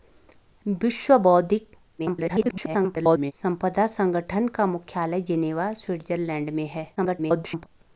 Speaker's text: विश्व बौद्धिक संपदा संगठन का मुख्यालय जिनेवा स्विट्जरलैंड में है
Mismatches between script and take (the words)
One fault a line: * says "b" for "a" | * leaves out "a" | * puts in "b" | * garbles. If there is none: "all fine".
* garbles
* garbles